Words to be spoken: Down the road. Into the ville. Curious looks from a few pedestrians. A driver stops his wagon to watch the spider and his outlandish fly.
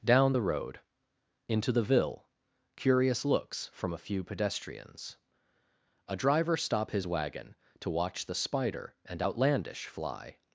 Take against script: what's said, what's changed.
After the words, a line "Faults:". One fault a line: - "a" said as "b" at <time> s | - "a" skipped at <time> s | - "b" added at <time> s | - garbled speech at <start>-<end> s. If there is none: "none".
Down the road. Into the ville. Curious looks from a few pedestrians. A driver stop his wagon to watch the spider and outlandish fly.
Faults:
- "stops" said as "stop" at 6.6 s
- "his" skipped at 9.2 s